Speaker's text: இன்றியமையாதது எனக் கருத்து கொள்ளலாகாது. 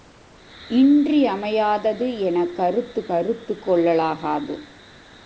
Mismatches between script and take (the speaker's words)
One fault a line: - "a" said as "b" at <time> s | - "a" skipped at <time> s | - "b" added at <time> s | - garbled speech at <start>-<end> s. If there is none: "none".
- "கருத்து" added at 3.1 s